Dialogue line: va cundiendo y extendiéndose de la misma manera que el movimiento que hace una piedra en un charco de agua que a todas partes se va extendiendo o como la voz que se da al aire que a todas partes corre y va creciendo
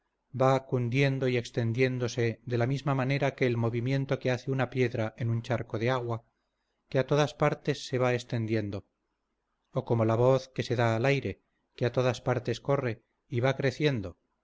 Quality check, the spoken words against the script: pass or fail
pass